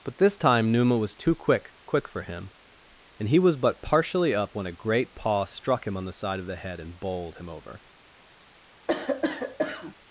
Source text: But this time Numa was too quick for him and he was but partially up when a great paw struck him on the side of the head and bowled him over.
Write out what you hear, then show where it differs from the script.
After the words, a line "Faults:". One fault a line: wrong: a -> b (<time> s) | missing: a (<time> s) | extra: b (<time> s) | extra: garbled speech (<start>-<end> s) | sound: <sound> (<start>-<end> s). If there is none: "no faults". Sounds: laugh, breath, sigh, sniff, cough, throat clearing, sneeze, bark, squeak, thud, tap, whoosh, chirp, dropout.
But this time Numa was too quick quick for him and he was but partially up when a great paw struck him on the side of the head and bowled him over.
Faults:
extra: quick (1.9 s)
sound: cough (8.9-9.9 s)